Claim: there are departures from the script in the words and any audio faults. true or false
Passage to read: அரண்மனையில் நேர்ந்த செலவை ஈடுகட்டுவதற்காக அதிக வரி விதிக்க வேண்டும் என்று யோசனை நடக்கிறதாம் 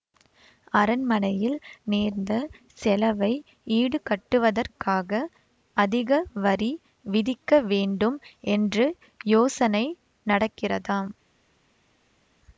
false